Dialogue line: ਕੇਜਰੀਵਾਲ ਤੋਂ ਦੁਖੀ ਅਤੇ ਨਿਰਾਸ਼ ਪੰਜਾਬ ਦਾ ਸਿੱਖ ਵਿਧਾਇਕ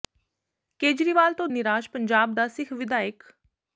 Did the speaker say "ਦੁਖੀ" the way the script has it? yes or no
no